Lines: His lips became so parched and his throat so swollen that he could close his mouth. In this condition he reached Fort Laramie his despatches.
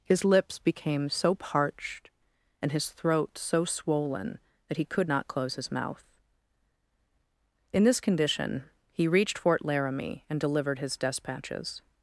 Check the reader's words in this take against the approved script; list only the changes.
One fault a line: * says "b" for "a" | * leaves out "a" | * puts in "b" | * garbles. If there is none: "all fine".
* puts in "not"
* puts in "and delivered"